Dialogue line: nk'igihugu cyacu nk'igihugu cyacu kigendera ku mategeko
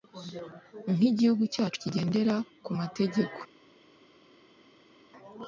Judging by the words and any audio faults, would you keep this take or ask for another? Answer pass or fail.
fail